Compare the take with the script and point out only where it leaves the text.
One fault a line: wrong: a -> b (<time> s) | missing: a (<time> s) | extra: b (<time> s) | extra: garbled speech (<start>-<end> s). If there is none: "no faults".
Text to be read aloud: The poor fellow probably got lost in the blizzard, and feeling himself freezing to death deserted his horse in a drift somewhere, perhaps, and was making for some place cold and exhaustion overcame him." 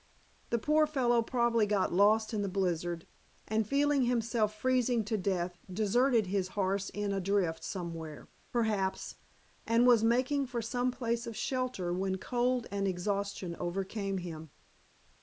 extra: of shelter when (11.3 s)